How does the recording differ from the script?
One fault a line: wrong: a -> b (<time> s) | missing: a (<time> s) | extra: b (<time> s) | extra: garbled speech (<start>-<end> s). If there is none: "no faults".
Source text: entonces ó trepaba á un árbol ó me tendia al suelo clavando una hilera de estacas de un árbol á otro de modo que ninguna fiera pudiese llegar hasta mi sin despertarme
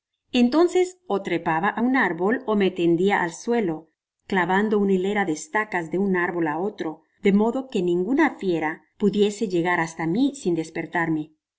no faults